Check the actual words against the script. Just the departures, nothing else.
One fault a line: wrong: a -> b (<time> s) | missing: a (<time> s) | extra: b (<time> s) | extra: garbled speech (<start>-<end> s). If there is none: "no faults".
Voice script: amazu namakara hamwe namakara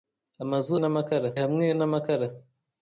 no faults